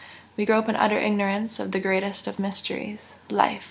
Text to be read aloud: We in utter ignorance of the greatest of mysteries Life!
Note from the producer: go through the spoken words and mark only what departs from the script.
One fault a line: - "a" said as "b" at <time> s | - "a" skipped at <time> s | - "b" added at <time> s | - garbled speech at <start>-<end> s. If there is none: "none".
- "grope" added at 0.4 s